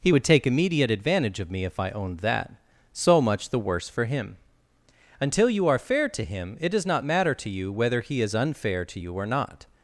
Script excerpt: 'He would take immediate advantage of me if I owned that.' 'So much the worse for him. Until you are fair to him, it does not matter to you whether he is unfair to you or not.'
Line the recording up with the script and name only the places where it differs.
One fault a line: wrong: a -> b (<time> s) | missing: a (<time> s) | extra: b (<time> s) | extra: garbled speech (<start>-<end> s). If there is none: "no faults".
no faults